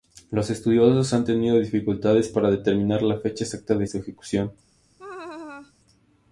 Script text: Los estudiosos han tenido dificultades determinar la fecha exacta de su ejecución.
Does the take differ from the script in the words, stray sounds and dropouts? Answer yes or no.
yes